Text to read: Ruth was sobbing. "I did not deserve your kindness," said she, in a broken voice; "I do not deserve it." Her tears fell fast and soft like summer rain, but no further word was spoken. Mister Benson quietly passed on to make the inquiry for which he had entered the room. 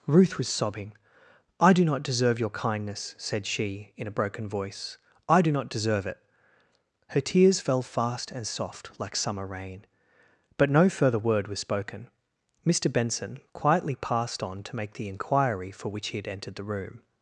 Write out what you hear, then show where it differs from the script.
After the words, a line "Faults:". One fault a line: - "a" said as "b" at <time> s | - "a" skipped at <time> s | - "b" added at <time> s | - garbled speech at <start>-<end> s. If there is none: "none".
Ruth was sobbing. "I do not deserve your kindness," said she, in a broken voice; "I do not deserve it." Her tears fell fast and soft like summer rain, but no further word was spoken. Mister Benson quietly passed on to make the inquiry for which he had entered the room.
Faults:
- "did" said as "do" at 1.7 s